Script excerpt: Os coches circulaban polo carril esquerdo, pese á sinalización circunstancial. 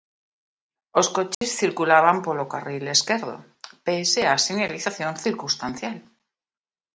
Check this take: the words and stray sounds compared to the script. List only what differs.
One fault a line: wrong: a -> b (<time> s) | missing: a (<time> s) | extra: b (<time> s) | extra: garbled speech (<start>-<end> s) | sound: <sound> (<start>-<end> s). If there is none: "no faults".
sound: dropout (1.3-1.4 s)